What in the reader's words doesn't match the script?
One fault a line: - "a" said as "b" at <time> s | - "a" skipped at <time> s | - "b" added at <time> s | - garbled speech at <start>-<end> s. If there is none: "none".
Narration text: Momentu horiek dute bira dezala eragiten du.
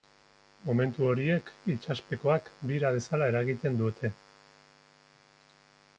- "dute" said as "itsaspekoak" at 1.7 s
- "du" said as "dute" at 3.8 s